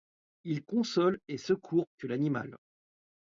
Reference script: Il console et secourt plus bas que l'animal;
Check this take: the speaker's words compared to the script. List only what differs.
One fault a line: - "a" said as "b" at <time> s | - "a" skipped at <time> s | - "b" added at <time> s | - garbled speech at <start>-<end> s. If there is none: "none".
- "plus bas" skipped at 1.9 s